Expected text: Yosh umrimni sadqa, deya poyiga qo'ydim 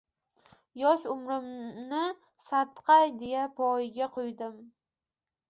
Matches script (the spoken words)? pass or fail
pass